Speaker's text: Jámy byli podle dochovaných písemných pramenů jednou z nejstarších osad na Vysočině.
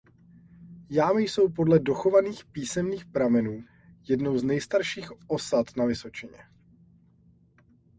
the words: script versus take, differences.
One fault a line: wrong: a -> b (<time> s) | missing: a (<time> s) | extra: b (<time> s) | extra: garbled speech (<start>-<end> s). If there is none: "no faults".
wrong: byli -> jsou (1.2 s)